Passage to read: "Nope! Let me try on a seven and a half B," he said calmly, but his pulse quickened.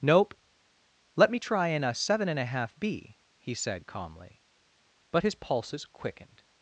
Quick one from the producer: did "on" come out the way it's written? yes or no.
no